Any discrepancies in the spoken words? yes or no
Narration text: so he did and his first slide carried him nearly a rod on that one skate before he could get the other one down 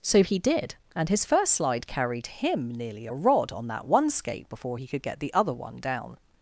no